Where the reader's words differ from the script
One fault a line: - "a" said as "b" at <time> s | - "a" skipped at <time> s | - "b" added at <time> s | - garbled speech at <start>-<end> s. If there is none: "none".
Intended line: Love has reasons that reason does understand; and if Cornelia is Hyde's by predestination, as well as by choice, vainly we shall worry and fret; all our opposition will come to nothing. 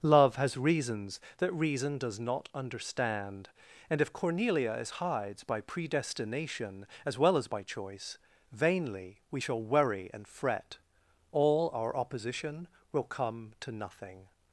- "not" added at 2.2 s